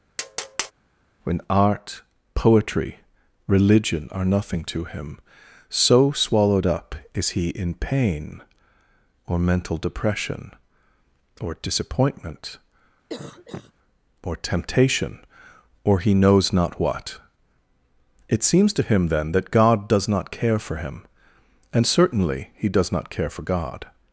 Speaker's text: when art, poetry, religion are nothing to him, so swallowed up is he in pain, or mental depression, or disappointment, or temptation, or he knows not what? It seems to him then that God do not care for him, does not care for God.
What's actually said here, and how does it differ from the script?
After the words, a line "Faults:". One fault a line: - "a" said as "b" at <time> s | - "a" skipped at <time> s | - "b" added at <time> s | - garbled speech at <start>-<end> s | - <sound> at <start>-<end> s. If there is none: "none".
when art, poetry, religion are nothing to him, so swallowed up is he in pain, or mental depression, or disappointment, or temptation, or he knows not what? It seems to him then that God does not care for him, and certainly he does not care for God.
Faults:
- tap at 0.2-0.7 s
- cough at 13.1-13.7 s
- "do" said as "does" at 19.9 s
- "and certainly he" added at 21.7 s